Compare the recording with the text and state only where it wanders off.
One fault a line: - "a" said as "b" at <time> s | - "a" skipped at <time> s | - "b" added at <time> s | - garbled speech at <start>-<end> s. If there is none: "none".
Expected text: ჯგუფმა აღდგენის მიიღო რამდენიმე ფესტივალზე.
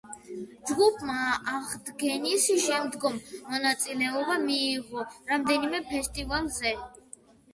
- "შემდგომ მონაწილეობა" added at 2.6 s